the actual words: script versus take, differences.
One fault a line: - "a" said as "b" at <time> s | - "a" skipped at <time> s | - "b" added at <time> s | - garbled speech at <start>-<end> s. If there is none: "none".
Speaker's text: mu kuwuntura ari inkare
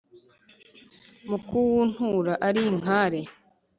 none